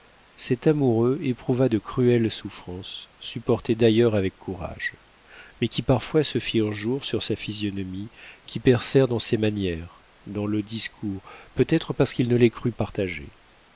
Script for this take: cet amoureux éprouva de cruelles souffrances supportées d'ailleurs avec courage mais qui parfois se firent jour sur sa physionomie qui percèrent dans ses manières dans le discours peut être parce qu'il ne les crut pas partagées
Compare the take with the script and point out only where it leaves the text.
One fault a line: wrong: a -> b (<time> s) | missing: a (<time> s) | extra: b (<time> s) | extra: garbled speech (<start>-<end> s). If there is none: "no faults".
missing: pas (12.7 s)